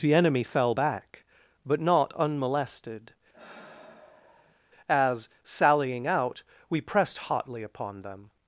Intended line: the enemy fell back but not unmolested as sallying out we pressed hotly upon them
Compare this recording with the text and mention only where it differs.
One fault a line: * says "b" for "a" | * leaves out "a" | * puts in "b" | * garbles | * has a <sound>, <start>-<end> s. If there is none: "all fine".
* has a sigh, 3.3-4.6 s